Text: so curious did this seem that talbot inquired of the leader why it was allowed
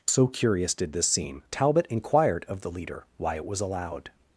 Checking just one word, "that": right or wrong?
wrong